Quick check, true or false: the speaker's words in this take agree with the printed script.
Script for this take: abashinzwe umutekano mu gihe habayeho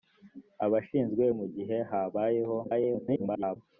false